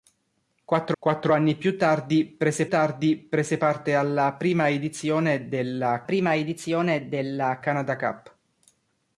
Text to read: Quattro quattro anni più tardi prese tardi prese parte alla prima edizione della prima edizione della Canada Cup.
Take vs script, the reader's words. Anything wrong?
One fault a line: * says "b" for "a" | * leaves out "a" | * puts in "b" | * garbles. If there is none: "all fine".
all fine